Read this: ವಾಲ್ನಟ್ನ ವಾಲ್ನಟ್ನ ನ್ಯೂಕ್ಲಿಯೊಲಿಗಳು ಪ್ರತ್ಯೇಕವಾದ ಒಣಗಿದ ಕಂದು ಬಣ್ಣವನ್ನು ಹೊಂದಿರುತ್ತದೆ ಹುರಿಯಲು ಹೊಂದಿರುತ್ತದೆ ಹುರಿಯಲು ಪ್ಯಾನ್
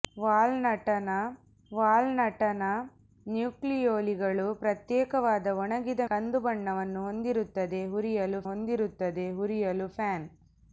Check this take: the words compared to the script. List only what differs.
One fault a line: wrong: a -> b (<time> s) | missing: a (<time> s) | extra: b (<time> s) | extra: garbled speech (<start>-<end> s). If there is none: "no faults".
no faults